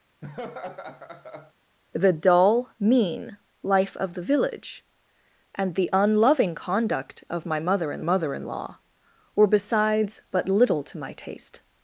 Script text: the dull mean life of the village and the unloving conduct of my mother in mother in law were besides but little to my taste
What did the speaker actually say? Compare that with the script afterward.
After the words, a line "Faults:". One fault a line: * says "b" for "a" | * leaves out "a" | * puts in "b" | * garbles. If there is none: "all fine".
the dull mean life of the village and the unloving conduct of my mother in mother in law were besides but little to my taste
Faults:
all fine